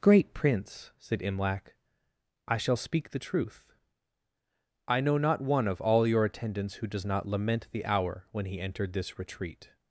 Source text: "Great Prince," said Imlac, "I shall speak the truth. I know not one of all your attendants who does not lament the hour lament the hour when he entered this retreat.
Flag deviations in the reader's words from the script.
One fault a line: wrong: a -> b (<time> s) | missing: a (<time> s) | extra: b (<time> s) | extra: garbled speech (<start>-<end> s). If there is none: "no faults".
missing: lament the hour (8.2 s)